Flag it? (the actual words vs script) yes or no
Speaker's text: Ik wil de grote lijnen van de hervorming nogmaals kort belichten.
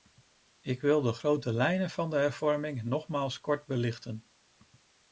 no